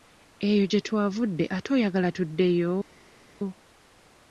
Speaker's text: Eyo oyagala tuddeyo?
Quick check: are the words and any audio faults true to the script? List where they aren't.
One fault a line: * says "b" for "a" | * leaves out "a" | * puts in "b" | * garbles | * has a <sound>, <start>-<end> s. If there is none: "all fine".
* puts in "gye twavudde ate"